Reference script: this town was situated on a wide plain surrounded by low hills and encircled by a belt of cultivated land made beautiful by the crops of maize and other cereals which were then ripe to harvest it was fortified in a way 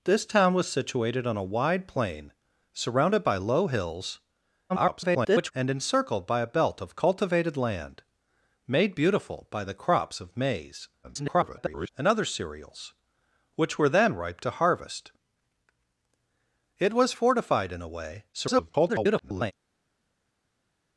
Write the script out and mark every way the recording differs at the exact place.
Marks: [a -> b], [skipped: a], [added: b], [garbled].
this town was situated on a wide plain surrounded by low hills [garbled] and encircled by a belt of cultivated land made beautiful by the crops of maize [garbled] and other cereals which were then ripe to harvest it was fortified in a way [garbled]